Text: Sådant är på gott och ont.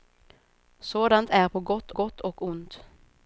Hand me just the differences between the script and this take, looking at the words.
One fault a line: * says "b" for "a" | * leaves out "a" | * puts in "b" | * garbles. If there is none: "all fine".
* puts in "gott"